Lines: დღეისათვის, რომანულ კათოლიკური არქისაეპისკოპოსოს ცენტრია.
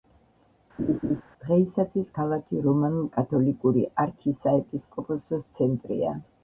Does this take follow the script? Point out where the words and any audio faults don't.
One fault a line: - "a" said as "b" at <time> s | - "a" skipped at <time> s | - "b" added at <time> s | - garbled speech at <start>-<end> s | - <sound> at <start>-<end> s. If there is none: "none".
- laugh at 0.8-1.2 s
- "ქალაქი" added at 2.2 s